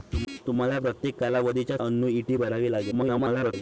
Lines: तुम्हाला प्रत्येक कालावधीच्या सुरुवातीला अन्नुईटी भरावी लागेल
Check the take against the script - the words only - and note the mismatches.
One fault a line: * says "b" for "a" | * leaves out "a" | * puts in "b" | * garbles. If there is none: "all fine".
* leaves out "सुरुवातीला"
* garbles